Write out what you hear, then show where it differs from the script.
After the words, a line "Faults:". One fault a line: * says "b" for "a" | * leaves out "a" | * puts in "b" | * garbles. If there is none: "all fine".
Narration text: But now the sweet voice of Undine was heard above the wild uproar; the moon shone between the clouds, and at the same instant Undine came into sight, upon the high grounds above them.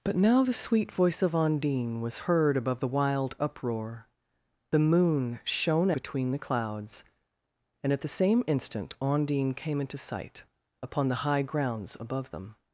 But now the sweet voice of Undine was heard above the wild uproar; the moon shone between the clouds, and at the same instant Undine came into sight, upon the high grounds above them.
Faults:
all fine